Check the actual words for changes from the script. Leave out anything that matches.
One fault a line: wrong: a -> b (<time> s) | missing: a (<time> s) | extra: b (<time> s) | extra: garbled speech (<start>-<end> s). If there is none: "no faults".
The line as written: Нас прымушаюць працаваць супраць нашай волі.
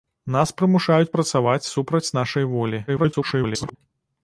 extra: garbled speech (2.9-3.8 s)